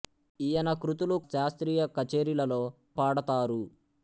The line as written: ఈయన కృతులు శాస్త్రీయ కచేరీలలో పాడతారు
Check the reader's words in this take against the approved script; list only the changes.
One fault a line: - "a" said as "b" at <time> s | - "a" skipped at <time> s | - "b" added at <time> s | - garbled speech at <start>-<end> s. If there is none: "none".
none